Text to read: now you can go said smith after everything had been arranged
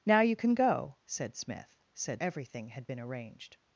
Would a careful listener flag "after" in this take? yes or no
yes